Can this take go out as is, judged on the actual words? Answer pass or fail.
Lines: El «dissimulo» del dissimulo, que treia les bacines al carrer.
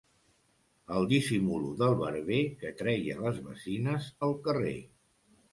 fail